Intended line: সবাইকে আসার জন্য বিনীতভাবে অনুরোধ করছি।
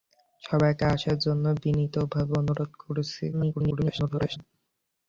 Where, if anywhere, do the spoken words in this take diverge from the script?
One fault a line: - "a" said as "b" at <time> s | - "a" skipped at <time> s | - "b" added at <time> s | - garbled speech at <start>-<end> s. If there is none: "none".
- garbled speech at 3.3-4.4 s